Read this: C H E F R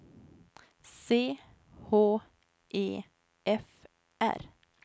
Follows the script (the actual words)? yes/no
yes